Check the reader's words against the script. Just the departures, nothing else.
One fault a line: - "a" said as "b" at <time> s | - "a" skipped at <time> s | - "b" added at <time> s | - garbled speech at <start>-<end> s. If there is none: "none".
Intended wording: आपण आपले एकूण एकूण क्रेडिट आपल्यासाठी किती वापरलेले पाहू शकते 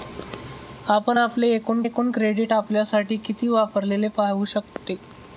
none